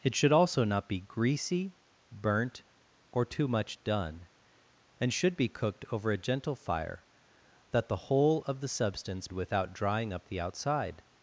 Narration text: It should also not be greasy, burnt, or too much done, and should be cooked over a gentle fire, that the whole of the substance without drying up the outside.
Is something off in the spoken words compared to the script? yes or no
no